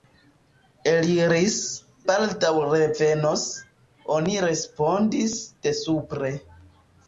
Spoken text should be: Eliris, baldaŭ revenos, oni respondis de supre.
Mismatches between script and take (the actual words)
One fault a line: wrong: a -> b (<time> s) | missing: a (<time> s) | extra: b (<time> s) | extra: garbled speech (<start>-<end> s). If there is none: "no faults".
no faults